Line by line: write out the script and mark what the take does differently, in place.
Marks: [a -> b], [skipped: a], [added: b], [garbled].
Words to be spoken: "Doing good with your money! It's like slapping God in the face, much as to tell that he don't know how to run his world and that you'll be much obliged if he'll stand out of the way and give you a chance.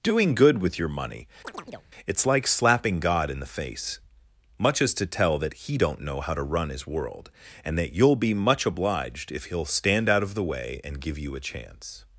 "Doing good with your money! It's like slapping God in the face, much as to tell that he don't know how to run his world and that you'll be much obliged if he'll stand out of the way and give you a chance.